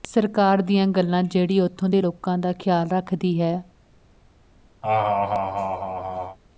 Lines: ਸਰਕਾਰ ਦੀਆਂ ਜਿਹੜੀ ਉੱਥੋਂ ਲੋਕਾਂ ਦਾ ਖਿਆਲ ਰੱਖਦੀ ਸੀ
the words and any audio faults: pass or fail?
fail